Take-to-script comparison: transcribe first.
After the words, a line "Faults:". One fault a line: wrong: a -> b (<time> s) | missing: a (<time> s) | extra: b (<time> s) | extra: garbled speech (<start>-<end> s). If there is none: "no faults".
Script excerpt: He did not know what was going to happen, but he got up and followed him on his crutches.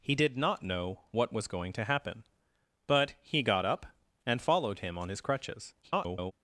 He did not know what was going to happen, but he got up and followed him on his crutches. [garbled]
Faults:
extra: garbled speech (5.8-6.3 s)